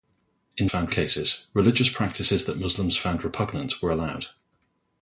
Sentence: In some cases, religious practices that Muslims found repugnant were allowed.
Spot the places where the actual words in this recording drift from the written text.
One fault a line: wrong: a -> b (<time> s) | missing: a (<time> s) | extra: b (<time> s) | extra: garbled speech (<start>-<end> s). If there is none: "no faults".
wrong: some -> found (0.6 s)